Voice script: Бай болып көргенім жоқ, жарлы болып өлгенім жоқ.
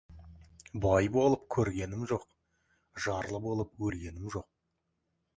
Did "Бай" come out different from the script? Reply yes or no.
no